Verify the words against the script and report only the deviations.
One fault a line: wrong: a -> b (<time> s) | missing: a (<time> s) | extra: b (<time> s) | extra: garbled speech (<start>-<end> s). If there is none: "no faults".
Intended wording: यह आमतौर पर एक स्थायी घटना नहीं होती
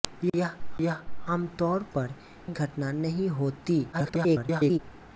extra: यह (0.8 s)
missing: एक स्थायी (2.1 s)
extra: garbled speech (3.9-4.8 s)